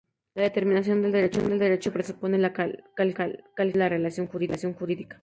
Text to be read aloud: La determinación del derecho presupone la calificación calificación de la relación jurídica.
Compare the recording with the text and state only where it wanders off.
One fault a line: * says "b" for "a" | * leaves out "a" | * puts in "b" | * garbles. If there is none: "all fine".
all fine